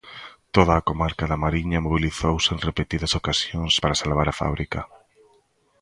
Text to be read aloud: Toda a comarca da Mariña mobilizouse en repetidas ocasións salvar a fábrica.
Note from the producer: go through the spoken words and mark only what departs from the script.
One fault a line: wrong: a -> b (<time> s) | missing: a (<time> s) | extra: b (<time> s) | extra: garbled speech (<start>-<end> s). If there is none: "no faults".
extra: para (3.8 s)